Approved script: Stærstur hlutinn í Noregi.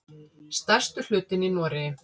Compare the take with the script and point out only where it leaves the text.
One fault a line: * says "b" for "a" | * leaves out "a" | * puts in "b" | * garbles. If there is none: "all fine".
all fine